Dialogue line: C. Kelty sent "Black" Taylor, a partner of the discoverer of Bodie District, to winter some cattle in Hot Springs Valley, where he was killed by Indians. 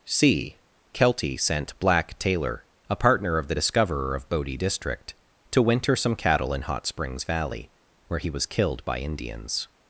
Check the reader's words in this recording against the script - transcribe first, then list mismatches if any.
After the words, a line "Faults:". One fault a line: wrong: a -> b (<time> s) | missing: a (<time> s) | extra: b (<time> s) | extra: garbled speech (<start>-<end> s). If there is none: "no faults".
C. Kelty sent "Black" Taylor, a partner of the discoverer of Bodie District, to winter some cattle in Hot Springs Valley, where he was killed by Indians.
Faults:
no faults